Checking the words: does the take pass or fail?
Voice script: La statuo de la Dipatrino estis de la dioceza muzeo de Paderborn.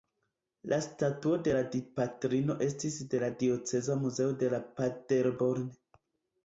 pass